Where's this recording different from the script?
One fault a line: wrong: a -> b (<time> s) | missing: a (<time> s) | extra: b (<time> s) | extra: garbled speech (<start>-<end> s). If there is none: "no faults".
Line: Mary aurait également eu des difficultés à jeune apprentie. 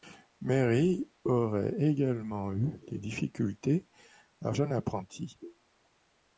no faults